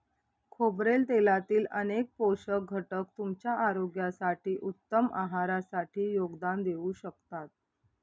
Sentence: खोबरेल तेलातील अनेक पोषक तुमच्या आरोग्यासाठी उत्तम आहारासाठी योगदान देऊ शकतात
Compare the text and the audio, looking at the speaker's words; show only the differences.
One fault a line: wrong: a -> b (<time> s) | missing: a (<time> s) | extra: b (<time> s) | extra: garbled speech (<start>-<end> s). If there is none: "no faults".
extra: घटक (2.7 s)